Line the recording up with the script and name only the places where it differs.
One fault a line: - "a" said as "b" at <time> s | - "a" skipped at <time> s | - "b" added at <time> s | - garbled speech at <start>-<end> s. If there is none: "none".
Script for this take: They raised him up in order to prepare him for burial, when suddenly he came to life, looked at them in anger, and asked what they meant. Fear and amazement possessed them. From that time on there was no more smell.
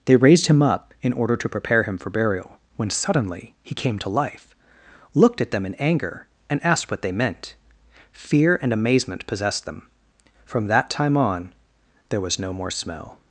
none